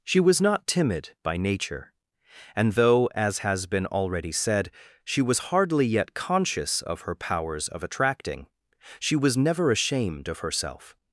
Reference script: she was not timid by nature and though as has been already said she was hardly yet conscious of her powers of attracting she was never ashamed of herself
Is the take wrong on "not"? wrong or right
right